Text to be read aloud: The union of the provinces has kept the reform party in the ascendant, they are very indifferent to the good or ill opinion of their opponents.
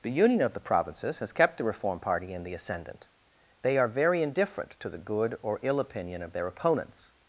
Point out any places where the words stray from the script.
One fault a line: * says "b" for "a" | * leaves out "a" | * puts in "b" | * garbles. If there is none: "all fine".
all fine